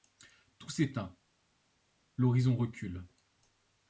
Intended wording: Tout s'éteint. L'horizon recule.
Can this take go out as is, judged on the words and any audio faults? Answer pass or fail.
pass